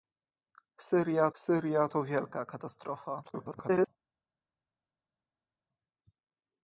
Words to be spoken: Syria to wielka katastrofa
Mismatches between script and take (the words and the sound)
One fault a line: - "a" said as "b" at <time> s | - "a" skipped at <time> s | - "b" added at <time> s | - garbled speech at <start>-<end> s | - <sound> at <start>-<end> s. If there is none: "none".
- "syria" added at 1.4 s
- garbled speech at 3.2-3.9 s